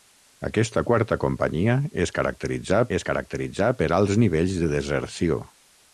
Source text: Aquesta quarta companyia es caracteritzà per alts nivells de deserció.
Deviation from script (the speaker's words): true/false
true